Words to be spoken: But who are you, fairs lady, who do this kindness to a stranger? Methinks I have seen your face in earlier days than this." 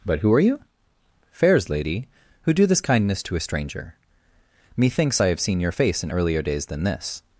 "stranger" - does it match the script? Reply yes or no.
yes